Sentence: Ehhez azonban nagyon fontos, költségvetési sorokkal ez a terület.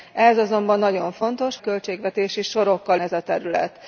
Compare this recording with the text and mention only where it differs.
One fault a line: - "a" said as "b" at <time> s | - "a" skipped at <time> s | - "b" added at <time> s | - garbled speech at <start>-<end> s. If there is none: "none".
none